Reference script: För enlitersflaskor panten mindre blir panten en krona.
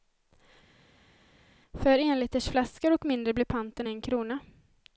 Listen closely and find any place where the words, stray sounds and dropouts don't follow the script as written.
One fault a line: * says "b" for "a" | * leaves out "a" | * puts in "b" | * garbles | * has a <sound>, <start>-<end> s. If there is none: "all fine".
* says "och" for "panten"